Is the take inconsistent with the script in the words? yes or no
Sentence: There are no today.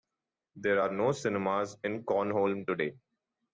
yes